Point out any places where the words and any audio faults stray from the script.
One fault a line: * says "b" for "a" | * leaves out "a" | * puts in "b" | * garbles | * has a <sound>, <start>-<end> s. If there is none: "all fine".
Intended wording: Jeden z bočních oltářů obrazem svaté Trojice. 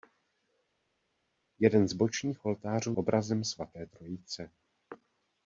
all fine